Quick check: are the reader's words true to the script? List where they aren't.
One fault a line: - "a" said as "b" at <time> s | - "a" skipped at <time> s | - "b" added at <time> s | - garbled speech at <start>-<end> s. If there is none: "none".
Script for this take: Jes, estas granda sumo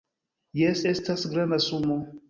none